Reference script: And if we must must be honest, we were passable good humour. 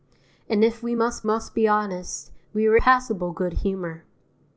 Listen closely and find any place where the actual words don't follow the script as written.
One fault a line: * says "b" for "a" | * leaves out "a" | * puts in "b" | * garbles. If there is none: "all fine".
all fine